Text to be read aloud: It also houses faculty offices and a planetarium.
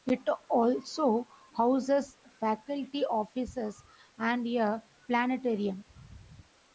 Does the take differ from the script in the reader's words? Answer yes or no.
no